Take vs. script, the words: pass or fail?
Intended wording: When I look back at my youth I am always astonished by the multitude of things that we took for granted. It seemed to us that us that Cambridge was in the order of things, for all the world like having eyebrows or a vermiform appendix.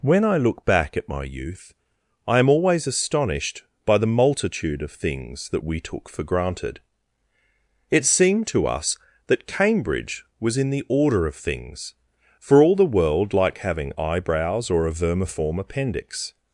fail